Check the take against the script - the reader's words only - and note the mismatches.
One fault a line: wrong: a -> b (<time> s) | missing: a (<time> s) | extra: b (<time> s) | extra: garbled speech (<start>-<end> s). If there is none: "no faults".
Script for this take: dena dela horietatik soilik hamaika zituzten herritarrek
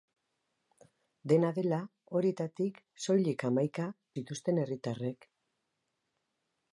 no faults